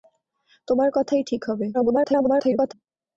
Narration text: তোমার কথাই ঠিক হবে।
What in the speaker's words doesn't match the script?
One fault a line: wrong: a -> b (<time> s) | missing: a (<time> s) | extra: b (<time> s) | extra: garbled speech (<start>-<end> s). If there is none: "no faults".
extra: garbled speech (1.7-2.7 s)